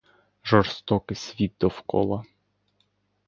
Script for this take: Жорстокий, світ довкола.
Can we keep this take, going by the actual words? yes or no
yes